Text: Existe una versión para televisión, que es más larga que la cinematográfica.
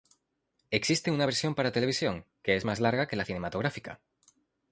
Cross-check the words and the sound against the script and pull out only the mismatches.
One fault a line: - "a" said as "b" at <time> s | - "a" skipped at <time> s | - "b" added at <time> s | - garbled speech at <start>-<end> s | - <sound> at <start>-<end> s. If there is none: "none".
none